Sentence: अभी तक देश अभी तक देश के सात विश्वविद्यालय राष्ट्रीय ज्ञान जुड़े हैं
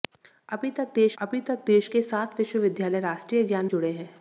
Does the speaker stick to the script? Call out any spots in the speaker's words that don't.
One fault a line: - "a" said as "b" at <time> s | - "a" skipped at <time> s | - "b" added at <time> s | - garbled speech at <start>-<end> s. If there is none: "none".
none